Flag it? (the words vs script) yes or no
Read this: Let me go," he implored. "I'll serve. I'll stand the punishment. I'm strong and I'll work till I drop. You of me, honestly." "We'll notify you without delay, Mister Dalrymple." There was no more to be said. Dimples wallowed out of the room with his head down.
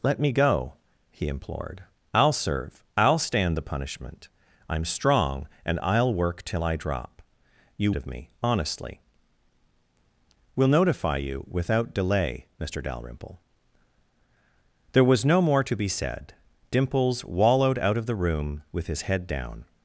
no